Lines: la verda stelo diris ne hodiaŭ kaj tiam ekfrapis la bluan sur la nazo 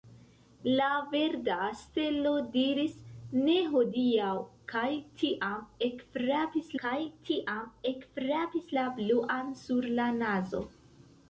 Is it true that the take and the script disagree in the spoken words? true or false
true